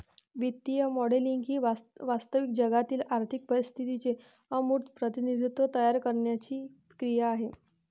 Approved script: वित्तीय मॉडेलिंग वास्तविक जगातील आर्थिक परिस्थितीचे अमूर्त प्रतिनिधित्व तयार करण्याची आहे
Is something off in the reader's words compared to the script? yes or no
yes